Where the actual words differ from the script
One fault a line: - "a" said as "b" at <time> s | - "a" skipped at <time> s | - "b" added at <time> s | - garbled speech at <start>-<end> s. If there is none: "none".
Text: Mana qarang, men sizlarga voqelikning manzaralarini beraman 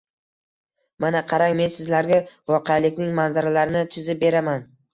- "chizib" added at 4.0 s